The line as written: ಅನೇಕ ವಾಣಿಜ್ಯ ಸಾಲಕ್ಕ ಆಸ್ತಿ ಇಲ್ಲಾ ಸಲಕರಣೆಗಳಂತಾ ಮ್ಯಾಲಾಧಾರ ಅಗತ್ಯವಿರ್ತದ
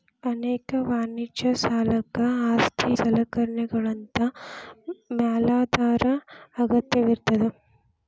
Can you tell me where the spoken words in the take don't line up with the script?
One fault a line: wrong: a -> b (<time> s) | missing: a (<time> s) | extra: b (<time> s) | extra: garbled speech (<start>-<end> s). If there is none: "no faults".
missing: ಇಲ್ಲಾ (2.9 s)